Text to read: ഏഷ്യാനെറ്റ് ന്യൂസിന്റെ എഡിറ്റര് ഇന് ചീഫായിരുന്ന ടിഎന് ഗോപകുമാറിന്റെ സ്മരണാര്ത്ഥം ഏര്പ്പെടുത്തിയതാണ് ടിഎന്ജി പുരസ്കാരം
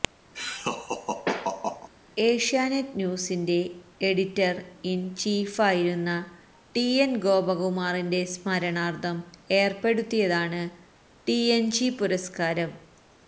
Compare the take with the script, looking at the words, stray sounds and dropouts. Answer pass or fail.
fail